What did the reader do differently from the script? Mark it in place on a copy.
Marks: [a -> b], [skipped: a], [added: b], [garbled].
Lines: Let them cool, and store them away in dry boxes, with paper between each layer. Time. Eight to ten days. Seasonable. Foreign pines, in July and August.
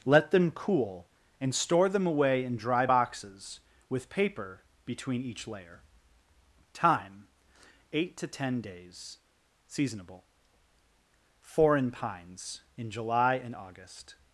Let them cool, and store them away in dry boxes, with paper between each layer. Time. Eight to ten days. Seasonable. Foreign pines, in July and August.